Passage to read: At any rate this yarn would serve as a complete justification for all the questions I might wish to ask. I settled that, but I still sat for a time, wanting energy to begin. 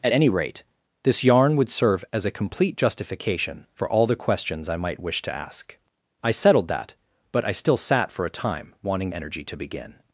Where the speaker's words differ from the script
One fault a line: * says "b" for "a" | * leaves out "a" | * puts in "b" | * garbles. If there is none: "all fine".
all fine